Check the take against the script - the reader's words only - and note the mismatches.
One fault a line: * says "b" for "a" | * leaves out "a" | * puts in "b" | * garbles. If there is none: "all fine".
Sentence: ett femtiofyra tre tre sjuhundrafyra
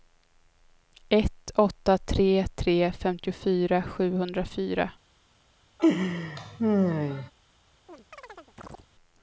* says "åtta" for "femtiofyra"
* puts in "femtiofyra"